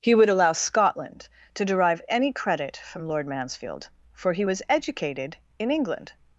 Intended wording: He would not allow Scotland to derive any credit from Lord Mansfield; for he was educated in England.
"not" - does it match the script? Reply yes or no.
no